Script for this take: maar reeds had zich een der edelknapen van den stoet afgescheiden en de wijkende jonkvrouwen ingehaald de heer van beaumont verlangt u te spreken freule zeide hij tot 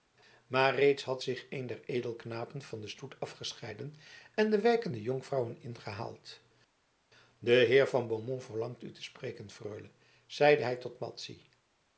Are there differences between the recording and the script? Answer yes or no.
no